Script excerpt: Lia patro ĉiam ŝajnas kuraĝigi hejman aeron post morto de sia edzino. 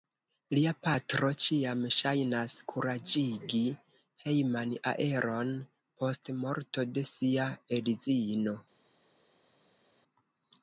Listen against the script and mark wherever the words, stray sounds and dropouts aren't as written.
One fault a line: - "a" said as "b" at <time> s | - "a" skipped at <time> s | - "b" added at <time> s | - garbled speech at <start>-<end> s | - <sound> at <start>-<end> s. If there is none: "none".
none